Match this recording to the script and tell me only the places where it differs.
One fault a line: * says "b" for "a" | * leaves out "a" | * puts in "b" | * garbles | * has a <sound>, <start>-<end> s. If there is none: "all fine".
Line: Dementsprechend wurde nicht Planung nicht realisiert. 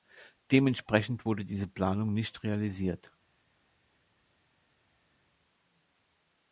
* says "diese" for "nicht"